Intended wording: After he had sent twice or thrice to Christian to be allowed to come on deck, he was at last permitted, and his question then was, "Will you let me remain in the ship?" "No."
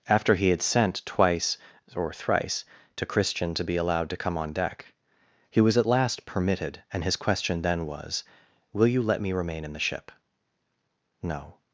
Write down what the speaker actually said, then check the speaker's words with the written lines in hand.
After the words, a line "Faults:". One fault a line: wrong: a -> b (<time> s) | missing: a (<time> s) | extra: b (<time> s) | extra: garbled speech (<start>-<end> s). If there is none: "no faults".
After he had sent twice or thrice to Christian to be allowed to come on deck, he was at last permitted, and his question then was, "Will you let me remain in the ship?" "No."
Faults:
no faults